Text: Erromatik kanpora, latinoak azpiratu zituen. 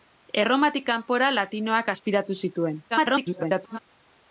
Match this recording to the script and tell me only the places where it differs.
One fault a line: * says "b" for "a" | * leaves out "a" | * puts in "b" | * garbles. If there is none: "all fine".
* garbles